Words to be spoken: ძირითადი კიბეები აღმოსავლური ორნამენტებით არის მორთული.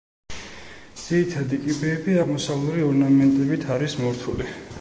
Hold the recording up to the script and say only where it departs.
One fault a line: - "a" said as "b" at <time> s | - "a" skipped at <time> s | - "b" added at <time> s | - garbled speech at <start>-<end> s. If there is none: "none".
none